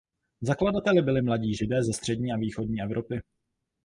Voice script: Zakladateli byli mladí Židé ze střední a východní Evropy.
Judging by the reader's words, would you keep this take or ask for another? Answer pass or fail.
pass